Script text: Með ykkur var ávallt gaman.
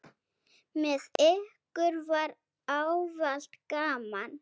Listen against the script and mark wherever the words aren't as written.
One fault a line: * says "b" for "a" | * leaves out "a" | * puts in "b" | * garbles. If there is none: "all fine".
all fine